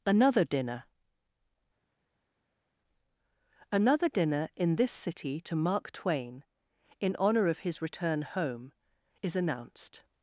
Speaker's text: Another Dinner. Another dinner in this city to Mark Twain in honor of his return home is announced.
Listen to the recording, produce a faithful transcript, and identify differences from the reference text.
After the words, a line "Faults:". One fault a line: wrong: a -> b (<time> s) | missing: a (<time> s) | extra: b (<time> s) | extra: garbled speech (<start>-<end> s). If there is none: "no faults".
Another Dinner. Another dinner in this city to Mark Twain in honor of his return home is announced.
Faults:
no faults